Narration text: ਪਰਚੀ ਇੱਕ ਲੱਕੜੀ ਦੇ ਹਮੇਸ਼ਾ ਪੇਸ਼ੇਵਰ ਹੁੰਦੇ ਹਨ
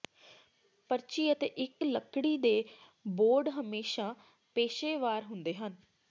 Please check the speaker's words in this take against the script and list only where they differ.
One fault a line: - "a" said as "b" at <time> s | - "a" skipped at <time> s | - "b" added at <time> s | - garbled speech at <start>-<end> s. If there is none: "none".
- "ਅਤੇ" added at 1.3 s
- "ਬੋਰਡ" added at 3.0 s